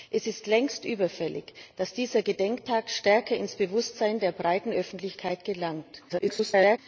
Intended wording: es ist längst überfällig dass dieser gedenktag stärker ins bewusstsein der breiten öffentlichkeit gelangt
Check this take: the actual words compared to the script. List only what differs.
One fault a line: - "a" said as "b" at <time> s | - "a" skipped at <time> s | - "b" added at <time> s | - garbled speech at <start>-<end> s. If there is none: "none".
- garbled speech at 6.1-6.8 s